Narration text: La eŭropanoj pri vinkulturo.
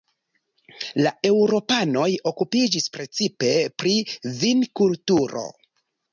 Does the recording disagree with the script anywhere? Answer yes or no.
yes